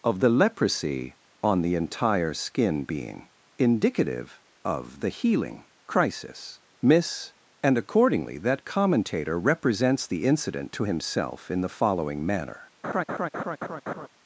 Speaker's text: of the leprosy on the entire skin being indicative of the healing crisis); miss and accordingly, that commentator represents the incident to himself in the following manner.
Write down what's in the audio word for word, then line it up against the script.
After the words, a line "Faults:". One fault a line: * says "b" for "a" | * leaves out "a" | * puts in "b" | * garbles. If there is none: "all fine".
of the leprosy on the entire skin being indicative of the healing crisis); miss and accordingly, that commentator represents the incident to himself in the following manner.
Faults:
all fine